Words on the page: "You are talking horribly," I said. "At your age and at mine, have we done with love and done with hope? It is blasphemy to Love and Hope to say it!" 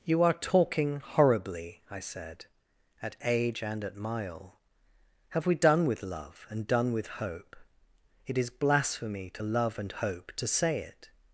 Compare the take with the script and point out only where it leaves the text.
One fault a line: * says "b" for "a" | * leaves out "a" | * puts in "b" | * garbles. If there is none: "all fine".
* leaves out "your"
* says "mile" for "mine"